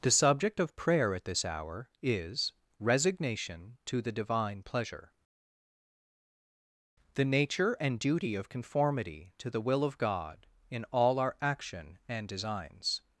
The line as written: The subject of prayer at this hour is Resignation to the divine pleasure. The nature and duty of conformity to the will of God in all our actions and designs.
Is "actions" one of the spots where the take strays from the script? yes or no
yes